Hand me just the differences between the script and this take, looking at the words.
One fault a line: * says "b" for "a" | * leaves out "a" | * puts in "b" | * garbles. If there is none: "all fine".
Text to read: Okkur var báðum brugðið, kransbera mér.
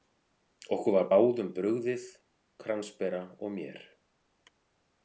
* puts in "og"